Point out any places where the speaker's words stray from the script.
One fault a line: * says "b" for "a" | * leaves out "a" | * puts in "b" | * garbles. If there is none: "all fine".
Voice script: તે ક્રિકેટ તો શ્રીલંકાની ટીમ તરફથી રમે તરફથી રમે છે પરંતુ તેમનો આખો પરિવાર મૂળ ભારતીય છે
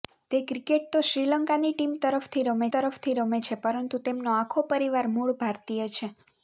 all fine